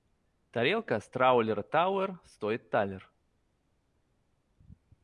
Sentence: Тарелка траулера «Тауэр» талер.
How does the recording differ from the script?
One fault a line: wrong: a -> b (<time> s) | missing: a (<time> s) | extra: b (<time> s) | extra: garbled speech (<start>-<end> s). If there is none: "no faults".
extra: с (1.0 s)
extra: стоит (2.2 s)